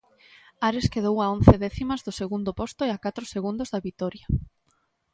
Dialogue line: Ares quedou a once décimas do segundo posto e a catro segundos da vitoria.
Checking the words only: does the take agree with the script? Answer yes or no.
yes